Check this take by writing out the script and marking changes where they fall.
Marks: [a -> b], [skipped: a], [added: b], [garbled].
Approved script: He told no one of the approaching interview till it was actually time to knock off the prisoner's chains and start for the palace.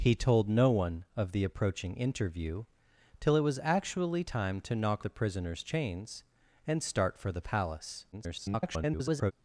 He told no one of the approaching interview till it was actually time to knock [skipped: off] the prisoner's chains and start for the palace. [garbled]